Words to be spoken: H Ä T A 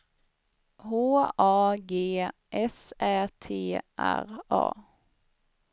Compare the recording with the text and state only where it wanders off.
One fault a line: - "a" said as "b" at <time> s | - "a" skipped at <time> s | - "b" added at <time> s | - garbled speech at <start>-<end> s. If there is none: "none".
- "A G S" added at 1.4 s
- "R" added at 4.0 s